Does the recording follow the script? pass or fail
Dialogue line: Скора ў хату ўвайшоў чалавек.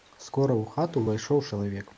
pass